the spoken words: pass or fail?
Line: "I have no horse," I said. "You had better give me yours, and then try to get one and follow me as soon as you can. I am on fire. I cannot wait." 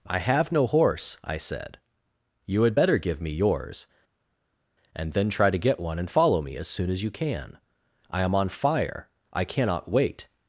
pass